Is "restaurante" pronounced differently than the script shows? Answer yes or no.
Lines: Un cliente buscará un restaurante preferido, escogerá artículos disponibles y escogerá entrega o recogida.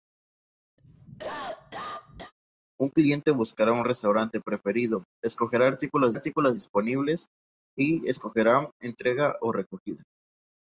no